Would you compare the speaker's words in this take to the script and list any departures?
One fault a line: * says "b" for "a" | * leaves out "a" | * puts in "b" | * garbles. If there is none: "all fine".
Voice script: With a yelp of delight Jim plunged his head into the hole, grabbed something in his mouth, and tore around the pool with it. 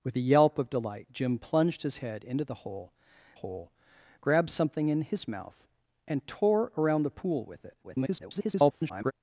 * puts in "hole"
* garbles